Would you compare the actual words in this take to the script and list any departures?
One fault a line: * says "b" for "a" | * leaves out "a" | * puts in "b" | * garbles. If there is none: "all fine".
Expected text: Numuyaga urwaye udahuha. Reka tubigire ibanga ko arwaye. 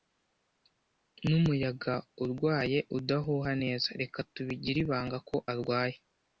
* puts in "neza"